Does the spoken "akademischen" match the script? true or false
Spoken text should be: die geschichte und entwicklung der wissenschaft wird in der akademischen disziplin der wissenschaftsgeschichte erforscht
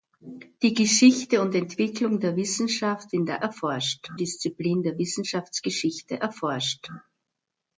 false